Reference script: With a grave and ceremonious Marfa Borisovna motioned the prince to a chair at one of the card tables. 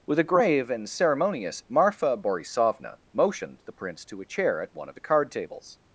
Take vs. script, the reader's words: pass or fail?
pass